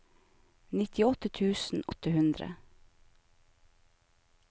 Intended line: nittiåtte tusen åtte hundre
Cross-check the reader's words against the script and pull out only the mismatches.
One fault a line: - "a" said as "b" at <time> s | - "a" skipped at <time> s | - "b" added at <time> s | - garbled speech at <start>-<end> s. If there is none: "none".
none